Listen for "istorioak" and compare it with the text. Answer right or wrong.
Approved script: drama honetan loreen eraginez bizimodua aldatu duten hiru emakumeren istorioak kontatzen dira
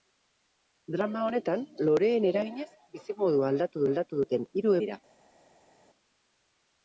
wrong